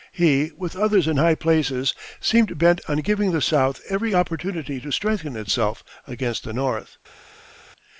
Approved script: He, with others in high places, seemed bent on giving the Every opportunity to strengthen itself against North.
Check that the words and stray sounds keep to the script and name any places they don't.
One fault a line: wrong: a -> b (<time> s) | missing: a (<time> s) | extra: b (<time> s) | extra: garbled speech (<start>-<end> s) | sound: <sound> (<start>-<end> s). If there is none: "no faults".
extra: South (3.4 s)
extra: the (6.4 s)